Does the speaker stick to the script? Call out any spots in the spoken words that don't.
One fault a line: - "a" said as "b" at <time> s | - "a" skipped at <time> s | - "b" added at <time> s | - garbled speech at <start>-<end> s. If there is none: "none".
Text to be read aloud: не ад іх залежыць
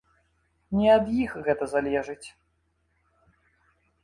- "гэта" added at 1.5 s